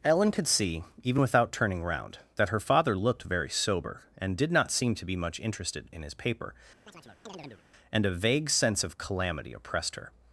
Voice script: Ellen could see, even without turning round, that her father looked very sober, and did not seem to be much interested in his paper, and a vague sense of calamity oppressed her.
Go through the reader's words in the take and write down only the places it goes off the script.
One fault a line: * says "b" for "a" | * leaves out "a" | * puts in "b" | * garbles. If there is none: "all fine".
all fine